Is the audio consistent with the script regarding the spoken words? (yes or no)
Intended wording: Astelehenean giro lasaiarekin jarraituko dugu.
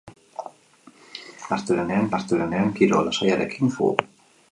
no